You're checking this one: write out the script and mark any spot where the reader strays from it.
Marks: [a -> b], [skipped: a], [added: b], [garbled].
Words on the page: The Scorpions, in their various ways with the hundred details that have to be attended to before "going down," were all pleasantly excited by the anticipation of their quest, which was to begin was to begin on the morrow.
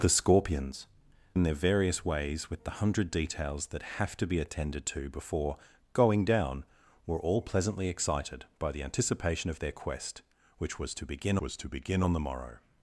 The Scorpions, in their various ways with the hundred details that have to be attended to before "going down," were all pleasantly excited by the anticipation of their quest, which was to begin was to begin on the morrow.